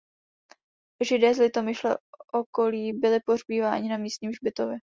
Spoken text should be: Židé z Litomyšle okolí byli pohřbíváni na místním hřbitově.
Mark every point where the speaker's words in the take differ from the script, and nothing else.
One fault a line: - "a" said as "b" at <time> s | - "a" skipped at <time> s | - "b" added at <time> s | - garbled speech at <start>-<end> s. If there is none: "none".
none